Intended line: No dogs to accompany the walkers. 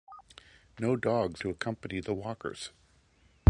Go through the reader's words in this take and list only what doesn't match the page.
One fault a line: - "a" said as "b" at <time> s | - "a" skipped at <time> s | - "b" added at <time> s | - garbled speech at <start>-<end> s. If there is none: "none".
none